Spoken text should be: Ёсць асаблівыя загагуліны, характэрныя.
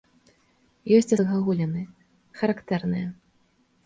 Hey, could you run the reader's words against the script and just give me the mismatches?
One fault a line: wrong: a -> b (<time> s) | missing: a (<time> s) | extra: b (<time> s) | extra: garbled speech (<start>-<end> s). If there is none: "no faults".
missing: асаблівыя (1.1 s)